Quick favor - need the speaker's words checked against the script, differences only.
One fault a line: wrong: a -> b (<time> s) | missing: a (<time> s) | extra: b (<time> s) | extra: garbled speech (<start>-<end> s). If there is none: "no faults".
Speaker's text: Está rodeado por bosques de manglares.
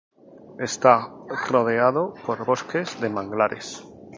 no faults